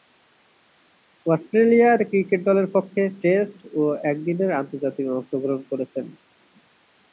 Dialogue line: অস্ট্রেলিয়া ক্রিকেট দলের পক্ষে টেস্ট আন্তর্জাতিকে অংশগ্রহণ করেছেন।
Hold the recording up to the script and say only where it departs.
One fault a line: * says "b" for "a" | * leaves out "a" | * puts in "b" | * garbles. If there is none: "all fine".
* puts in "ও একদিনের"